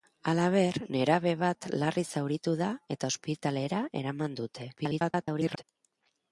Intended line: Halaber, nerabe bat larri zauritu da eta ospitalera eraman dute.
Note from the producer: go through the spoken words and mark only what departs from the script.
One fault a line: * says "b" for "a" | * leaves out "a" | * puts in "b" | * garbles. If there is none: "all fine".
* garbles